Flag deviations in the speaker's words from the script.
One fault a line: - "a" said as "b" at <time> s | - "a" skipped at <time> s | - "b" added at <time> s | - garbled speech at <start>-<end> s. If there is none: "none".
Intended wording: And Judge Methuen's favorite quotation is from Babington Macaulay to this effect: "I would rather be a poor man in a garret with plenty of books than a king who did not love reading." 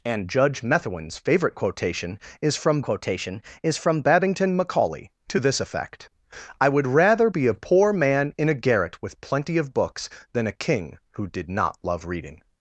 - "quotation is from" added at 2.8 s